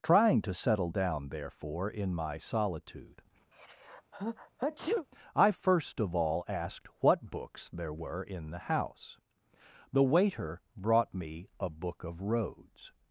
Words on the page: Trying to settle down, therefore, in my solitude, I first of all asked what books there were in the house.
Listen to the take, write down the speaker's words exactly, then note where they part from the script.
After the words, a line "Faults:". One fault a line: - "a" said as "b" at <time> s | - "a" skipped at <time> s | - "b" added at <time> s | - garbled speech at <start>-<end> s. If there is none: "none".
Trying to settle down, therefore, in my solitude, I first of all asked what books there were in the house. The waiter brought me a Book of Roads
Faults:
- "The waiter brought me a Book of Roads" added at 9.9 s